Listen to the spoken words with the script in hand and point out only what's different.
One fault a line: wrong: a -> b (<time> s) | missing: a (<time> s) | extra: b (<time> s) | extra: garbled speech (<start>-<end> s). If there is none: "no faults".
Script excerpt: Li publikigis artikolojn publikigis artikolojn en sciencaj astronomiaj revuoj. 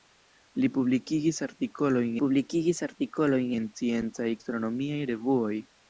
no faults